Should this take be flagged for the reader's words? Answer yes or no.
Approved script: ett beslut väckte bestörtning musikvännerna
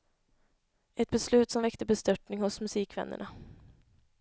yes